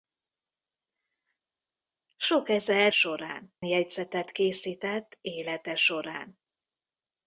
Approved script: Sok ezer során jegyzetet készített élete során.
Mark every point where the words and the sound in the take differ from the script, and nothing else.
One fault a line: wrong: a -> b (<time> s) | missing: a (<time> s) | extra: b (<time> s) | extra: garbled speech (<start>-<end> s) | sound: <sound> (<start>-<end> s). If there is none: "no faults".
no faults